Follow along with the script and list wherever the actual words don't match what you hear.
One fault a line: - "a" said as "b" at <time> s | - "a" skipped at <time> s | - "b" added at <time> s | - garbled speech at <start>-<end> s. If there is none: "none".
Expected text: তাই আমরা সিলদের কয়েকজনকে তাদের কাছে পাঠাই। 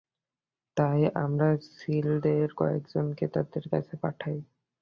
none